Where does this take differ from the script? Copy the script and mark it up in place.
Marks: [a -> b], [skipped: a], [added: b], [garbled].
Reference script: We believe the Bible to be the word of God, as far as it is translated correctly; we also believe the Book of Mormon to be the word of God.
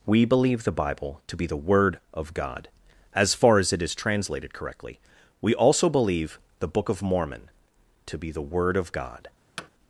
We believe the Bible to be the word of God, as far as it is translated correctly; we also believe the Book of Mormon to be the word of God.